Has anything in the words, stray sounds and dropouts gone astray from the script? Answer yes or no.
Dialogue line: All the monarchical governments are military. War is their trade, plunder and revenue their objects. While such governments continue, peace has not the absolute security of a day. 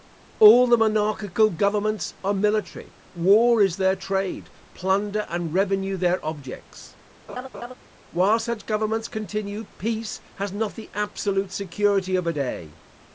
yes